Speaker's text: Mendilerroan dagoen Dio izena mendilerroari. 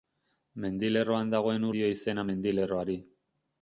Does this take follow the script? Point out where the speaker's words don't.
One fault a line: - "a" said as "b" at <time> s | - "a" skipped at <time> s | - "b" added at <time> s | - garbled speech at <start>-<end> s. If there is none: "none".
none